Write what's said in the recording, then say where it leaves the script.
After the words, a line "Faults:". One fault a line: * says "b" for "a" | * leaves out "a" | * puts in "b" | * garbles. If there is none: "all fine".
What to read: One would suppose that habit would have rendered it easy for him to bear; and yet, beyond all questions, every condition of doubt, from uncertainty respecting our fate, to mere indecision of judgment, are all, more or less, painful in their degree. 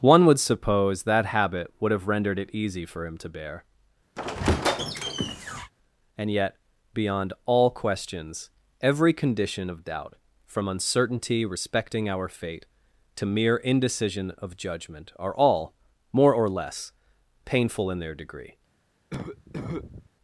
One would suppose that habit would have rendered it easy for him to bear; and yet, beyond all questions, every condition of doubt, from uncertainty respecting our fate, to mere indecision of judgment, are all, more or less, painful in their degree.
Faults:
all fine